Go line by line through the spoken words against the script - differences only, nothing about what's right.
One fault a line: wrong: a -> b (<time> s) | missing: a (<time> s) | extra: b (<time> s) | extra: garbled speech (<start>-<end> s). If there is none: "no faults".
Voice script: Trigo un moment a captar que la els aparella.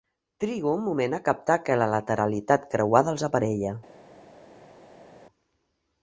extra: lateralitat creuada (1.9 s)